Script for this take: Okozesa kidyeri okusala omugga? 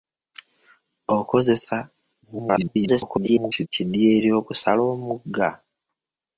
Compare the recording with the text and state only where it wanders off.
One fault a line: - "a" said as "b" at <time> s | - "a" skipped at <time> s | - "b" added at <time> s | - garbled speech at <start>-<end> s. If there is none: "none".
- garbled speech at 2.2-3.7 s